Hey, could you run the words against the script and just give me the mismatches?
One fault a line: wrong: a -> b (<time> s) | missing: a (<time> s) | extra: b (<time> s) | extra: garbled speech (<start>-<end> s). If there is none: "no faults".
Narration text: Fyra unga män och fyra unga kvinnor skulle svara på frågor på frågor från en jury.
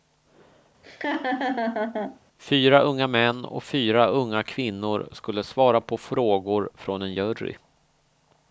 missing: på frågor (6.7 s)